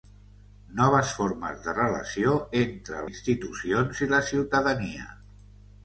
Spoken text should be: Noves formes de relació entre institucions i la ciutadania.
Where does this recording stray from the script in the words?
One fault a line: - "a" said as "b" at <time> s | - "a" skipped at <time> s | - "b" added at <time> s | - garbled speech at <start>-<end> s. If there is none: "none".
none